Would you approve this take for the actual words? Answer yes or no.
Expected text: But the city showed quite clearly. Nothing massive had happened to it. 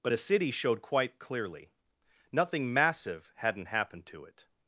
no